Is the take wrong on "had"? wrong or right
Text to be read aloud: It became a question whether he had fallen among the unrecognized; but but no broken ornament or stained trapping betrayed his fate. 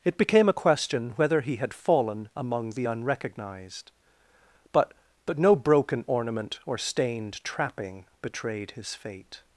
right